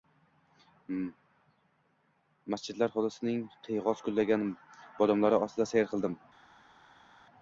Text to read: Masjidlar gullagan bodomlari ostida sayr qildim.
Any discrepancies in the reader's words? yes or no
yes